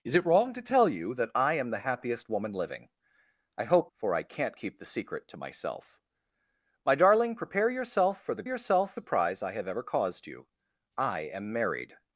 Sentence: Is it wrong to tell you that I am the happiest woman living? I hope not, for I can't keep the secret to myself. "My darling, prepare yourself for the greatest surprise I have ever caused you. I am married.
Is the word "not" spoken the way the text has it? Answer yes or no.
no